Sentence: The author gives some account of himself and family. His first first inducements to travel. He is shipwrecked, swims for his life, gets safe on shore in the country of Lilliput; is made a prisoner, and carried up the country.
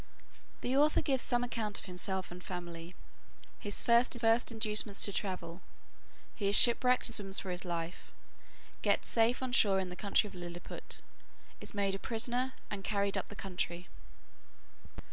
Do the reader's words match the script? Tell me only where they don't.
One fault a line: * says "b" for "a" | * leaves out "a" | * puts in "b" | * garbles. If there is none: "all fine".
all fine